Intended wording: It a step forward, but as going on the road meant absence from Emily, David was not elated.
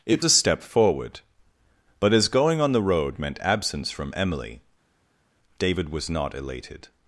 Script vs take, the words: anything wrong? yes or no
no